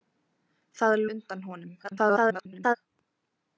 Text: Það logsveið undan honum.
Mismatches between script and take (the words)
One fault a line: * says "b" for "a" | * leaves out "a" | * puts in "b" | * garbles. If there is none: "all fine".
* leaves out "logsveið"
* garbles